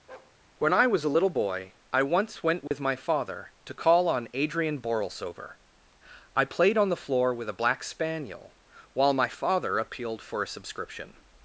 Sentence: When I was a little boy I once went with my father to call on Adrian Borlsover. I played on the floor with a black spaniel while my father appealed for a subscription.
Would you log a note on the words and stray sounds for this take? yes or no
yes